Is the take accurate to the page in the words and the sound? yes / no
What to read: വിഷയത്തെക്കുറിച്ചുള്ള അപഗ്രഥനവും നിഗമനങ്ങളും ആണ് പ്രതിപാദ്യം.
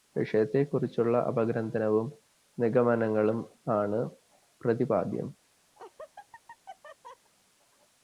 no